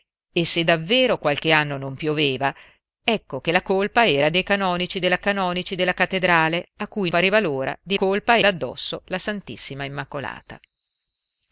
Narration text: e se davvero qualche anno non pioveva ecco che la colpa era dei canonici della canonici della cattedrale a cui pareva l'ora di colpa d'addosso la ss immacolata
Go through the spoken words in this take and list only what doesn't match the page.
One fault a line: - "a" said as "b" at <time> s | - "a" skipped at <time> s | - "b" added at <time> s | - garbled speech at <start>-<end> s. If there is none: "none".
none